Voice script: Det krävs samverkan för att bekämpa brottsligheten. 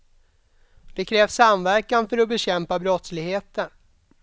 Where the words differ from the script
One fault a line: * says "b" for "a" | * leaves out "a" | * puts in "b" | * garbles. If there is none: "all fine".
all fine